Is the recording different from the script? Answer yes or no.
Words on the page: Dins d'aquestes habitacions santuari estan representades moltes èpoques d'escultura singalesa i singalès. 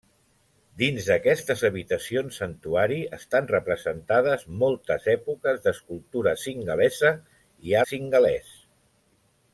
no